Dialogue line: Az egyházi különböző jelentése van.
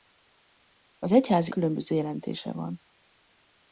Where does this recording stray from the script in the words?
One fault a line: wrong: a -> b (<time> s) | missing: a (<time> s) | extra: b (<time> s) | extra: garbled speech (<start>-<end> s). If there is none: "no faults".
no faults